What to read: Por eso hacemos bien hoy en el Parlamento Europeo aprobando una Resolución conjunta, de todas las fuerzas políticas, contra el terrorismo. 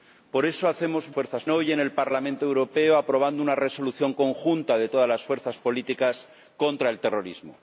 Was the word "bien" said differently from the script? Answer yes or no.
yes